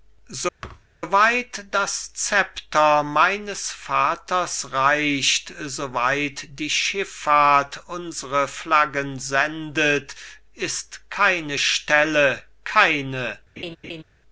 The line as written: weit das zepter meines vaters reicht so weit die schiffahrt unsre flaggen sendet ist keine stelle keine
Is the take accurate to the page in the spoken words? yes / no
yes